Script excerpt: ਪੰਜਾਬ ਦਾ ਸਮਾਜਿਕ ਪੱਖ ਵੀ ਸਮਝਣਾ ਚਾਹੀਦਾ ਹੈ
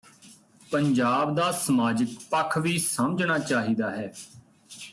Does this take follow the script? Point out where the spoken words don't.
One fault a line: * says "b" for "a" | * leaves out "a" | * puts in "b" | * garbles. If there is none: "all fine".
all fine